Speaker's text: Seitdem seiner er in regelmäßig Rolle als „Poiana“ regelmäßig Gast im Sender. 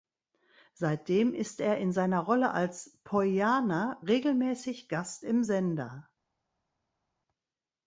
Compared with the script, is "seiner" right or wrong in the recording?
wrong